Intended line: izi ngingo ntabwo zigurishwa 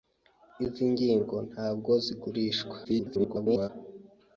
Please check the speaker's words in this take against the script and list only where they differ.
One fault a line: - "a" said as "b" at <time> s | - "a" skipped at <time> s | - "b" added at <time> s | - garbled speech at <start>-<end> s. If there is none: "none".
- garbled speech at 2.8-3.7 s